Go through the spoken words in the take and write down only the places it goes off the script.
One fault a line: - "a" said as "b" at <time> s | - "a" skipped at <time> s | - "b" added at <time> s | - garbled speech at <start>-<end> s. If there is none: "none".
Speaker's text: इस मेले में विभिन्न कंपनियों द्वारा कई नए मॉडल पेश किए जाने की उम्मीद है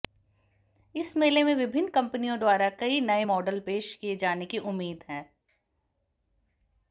none